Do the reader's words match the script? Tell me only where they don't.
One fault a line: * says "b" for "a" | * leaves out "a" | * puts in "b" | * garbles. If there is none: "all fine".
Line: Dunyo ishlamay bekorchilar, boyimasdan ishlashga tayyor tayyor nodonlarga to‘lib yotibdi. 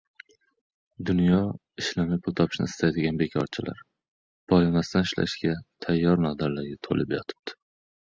* puts in "pul topishni istaydigan"
* leaves out "tayyor"